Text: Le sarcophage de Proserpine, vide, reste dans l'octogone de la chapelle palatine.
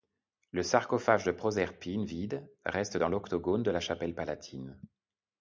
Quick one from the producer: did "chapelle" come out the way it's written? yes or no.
yes